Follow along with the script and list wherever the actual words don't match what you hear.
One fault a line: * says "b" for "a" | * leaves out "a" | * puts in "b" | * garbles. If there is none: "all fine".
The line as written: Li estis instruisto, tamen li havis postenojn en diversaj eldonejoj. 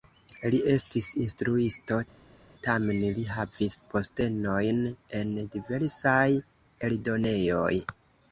all fine